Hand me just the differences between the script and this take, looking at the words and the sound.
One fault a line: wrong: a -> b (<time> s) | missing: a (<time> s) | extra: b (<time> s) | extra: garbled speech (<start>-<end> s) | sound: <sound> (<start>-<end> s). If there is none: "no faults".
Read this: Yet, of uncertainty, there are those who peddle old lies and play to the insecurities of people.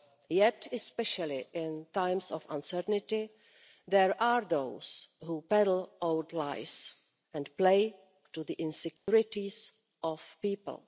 extra: especially in times (0.7 s)
sound: dropout (9.0-9.1 s)